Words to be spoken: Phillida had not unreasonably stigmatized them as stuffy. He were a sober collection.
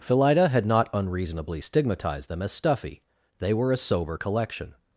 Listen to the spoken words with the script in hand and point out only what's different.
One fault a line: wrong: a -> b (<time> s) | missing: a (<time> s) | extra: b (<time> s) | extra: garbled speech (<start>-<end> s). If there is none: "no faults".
wrong: He -> They (3.4 s)